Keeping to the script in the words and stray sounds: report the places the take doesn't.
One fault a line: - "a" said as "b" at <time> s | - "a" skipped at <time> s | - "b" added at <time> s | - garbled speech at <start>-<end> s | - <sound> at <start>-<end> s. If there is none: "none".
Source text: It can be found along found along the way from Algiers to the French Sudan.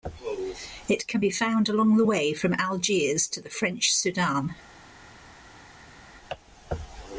- "found along" skipped at 2.0 s